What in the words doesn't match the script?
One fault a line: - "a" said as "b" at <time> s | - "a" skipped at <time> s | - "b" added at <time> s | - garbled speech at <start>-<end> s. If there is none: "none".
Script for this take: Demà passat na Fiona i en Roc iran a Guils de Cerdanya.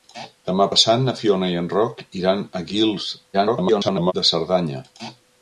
- garbled speech at 3.3-4.1 s